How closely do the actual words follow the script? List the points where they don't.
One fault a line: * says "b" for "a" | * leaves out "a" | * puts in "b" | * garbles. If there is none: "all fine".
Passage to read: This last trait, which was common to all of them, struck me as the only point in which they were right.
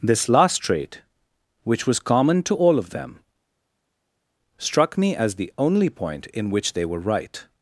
all fine